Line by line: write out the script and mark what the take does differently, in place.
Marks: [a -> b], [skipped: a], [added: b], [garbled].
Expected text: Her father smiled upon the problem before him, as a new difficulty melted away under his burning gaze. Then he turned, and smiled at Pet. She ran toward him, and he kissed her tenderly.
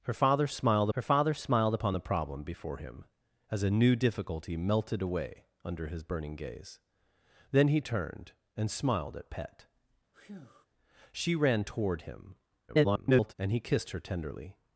Her father smiled [added: her father smiled] upon the problem before him, as a new difficulty melted away under his burning gaze. Then he turned, and smiled at Pet. She ran toward him, [garbled] and he kissed her tenderly.